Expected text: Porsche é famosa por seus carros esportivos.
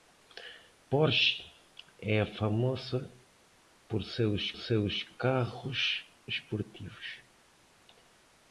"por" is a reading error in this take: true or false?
false